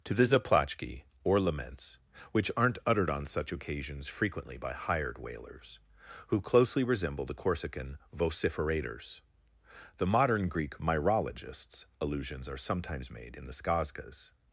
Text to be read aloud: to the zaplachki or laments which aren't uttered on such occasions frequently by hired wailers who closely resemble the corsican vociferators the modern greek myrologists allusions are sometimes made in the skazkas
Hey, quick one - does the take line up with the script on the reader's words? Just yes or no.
yes